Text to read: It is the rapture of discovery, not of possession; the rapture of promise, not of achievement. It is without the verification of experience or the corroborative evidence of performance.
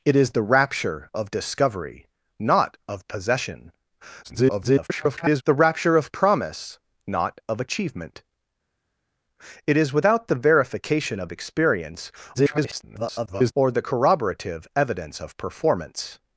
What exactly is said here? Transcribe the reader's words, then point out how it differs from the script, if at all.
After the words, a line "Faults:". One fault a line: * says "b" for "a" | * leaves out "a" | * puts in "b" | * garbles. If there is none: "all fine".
It is the rapture of discovery, not of possession; [garbled] the rapture of promise, not of achievement. It is without the verification of experience [garbled] or the corroborative evidence of performance.
Faults:
* garbles
* garbles